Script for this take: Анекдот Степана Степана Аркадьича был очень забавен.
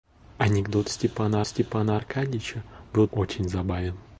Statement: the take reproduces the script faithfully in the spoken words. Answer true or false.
true